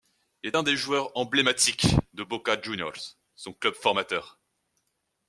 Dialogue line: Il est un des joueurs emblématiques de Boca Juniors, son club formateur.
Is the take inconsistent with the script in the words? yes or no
no